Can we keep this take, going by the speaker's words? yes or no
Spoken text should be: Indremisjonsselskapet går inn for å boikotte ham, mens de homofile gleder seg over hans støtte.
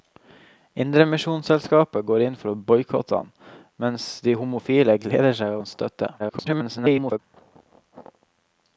no